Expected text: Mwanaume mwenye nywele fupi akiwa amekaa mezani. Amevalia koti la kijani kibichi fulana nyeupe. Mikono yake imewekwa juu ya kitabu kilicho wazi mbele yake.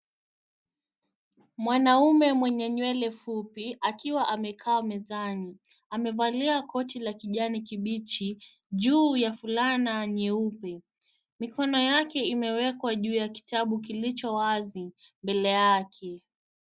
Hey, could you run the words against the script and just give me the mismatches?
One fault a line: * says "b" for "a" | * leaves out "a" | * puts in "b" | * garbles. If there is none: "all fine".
* puts in "juu ya"